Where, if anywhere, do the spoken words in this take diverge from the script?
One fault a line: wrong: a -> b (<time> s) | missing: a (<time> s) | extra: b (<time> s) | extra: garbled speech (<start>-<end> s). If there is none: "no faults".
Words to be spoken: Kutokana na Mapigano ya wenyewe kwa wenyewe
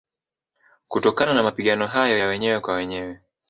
extra: hayo (1.9 s)